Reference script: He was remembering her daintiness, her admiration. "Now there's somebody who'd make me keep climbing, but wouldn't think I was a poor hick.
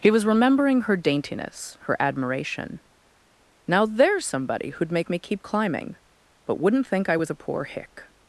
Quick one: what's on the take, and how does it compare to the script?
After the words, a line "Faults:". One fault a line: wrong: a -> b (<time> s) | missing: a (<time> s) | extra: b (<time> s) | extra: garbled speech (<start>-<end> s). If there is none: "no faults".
He was remembering her daintiness, her admiration. "Now there's somebody who'd make me keep climbing, but wouldn't think I was a poor hick.
Faults:
no faults